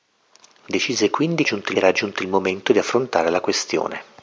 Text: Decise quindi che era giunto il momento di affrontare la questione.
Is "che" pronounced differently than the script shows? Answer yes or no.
yes